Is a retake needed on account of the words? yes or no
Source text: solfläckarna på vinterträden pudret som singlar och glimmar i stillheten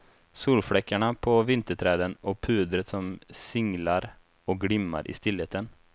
yes